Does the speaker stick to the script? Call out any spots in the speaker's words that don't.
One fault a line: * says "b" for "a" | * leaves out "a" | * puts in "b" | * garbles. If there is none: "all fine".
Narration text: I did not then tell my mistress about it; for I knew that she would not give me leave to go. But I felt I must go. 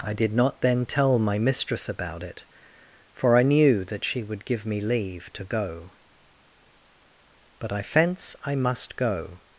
* leaves out "not"
* says "fence" for "felt"